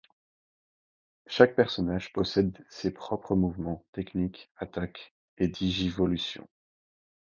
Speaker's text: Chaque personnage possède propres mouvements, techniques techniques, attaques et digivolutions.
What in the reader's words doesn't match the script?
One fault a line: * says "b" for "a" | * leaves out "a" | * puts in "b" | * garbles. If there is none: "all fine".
* puts in "ses"
* leaves out "techniques"